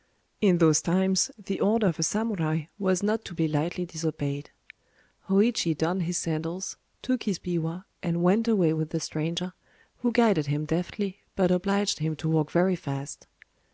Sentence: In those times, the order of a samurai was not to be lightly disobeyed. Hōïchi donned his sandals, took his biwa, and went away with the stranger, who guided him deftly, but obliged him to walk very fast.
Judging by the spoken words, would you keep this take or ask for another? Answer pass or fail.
pass